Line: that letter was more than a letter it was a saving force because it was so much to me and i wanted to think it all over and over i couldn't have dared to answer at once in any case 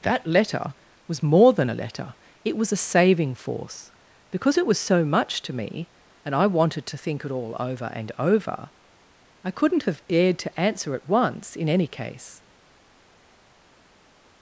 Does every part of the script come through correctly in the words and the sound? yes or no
yes